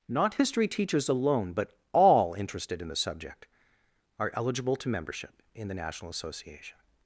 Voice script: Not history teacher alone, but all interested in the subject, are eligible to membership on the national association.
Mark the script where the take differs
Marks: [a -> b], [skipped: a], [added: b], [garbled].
Not history [teacher -> teachers] alone, but all interested in the subject, are eligible to membership [on -> in] the national association.